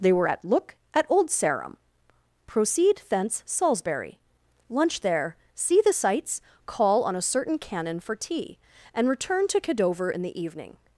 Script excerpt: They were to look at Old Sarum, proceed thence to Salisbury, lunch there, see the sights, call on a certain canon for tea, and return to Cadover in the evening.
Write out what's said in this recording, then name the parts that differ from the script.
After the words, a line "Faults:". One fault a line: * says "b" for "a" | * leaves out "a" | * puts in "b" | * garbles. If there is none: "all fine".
They were at look at Old Sarum, proceed thence Salisbury, lunch there, see the sights, call on a certain canon for tea, and return to Cadover in the evening.
Faults:
* says "at" for "to"
* leaves out "to"